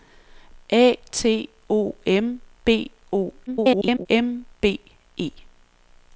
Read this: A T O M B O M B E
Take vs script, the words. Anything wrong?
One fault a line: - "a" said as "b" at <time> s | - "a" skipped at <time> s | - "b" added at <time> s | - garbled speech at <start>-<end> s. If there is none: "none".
- garbled speech at 3.5-4.1 s